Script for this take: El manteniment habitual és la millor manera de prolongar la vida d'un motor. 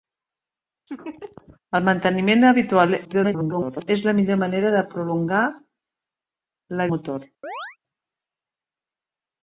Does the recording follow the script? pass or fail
fail